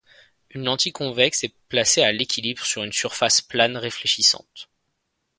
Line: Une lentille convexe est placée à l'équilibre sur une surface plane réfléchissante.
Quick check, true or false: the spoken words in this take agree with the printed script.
true